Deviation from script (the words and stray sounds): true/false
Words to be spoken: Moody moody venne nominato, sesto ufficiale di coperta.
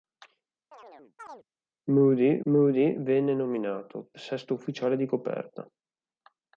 true